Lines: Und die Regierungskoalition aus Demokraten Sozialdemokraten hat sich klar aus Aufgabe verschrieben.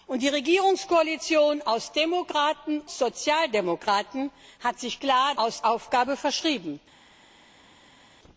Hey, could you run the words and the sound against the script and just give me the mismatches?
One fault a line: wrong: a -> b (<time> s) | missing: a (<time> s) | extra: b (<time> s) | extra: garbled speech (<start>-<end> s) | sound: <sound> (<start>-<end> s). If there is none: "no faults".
no faults